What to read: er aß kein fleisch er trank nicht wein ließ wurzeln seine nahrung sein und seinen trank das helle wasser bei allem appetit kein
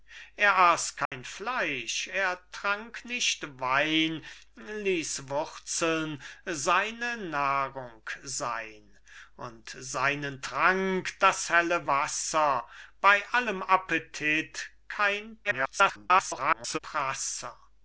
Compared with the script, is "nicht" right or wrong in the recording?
right